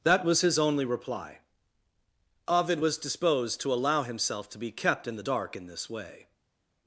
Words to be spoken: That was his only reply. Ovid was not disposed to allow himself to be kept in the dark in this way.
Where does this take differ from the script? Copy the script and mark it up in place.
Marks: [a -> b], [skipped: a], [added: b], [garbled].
That was his only reply. Ovid was [skipped: not] disposed to allow himself to be kept in the dark in this way.